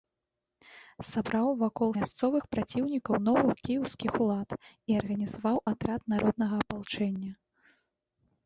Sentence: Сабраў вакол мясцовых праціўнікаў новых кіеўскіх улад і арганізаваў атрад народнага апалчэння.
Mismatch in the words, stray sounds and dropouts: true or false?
false